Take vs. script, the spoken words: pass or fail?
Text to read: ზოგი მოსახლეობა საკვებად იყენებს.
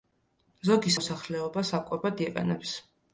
pass